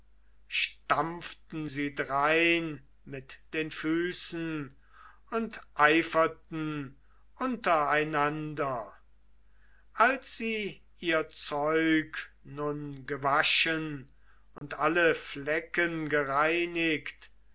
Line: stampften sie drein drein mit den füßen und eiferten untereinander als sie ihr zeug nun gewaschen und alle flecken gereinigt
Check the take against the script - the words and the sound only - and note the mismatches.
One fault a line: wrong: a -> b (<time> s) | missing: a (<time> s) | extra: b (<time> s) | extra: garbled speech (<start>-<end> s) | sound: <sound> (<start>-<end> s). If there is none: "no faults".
missing: drein (2.9 s)
sound: dropout (14.6-14.6 s)